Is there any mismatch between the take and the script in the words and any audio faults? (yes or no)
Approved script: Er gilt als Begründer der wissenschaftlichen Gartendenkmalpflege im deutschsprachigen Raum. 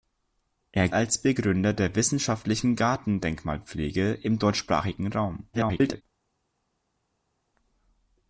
yes